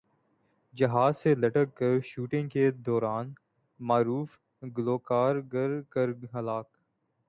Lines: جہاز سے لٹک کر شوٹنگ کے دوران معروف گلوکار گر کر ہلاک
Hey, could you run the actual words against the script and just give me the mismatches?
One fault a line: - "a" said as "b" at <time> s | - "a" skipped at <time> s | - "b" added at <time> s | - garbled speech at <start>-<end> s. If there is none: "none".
none